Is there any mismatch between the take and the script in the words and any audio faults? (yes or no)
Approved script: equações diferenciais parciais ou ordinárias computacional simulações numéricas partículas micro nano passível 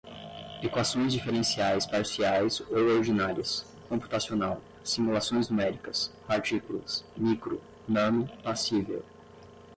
no